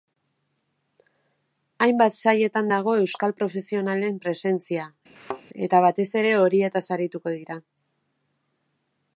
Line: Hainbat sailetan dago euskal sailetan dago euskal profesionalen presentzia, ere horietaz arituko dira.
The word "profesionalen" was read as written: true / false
false